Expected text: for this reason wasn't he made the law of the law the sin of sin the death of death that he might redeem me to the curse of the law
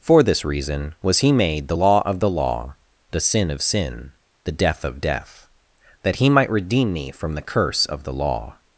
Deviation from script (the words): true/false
true